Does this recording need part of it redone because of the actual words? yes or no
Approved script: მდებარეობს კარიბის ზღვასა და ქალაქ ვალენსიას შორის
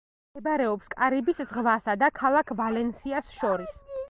no